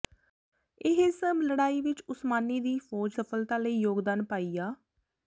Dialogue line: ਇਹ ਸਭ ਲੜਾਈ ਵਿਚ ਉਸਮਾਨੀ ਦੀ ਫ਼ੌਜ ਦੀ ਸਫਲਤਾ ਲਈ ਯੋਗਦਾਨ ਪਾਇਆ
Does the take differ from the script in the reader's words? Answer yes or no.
yes